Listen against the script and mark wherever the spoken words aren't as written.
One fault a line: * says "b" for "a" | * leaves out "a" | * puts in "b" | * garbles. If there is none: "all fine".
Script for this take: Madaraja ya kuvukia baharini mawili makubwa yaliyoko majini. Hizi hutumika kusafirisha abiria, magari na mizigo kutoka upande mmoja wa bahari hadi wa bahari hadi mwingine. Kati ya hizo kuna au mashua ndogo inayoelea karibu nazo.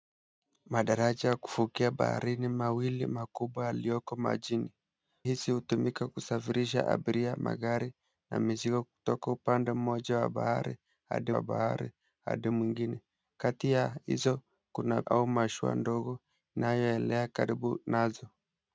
all fine